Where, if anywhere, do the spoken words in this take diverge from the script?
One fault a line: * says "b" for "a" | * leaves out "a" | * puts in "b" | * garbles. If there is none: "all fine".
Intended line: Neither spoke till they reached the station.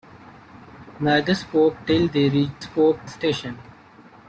* says "spoke" for "the"